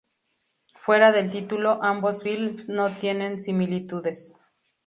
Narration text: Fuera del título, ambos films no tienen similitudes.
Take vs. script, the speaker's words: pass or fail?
pass